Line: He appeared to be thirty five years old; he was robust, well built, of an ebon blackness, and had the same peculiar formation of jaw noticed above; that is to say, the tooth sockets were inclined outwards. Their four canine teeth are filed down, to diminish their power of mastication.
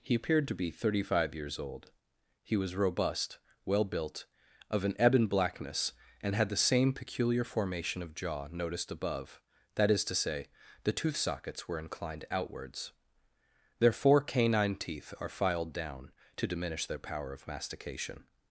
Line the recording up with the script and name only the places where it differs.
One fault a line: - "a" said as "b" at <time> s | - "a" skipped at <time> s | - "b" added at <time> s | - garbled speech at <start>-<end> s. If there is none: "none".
none